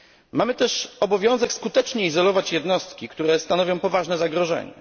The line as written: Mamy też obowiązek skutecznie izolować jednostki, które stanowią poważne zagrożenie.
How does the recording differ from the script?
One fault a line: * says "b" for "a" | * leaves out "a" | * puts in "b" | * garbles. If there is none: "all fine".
all fine